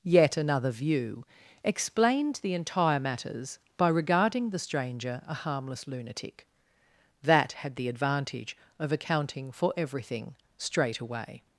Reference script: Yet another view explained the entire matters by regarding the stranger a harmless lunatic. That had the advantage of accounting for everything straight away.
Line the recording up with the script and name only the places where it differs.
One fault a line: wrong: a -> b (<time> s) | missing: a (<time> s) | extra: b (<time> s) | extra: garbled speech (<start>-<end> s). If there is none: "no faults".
no faults